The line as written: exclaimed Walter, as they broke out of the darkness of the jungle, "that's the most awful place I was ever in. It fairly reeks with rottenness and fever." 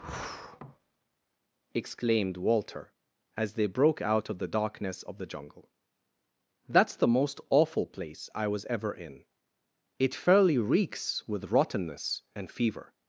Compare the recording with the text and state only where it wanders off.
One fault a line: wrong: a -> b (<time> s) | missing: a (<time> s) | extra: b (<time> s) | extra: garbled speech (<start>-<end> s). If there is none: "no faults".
no faults